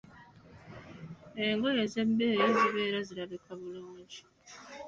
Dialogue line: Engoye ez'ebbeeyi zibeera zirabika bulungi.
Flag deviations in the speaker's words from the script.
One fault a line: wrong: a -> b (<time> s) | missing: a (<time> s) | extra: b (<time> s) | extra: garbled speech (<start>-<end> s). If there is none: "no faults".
no faults